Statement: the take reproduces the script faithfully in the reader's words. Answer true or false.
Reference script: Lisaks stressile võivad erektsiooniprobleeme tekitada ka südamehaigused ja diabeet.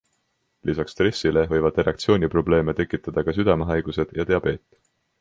true